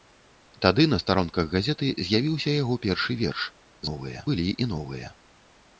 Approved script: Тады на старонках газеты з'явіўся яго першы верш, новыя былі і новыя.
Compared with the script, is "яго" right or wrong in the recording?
right